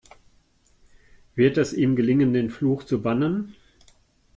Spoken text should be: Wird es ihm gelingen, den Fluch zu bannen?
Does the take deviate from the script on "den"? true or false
false